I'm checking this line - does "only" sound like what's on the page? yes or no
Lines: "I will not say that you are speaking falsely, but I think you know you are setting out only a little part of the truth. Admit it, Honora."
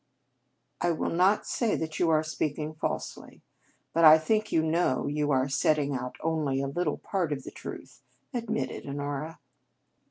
yes